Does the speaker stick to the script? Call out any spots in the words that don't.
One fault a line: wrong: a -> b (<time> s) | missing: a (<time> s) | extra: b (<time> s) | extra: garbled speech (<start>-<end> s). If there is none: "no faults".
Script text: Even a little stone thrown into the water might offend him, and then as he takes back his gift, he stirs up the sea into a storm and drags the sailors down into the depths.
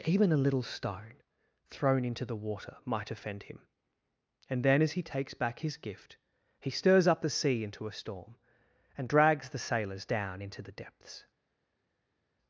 no faults